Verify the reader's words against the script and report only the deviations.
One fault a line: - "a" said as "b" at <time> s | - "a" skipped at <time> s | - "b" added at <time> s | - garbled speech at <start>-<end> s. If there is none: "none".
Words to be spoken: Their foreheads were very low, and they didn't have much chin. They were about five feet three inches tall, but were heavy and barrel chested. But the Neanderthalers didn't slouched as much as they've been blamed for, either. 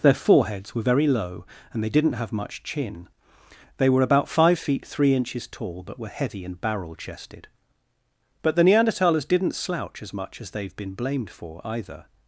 - "slouched" said as "slouch" at 9.5 s